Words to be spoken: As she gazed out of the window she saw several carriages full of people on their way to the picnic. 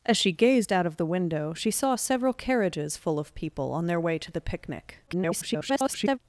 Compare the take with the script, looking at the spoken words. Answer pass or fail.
fail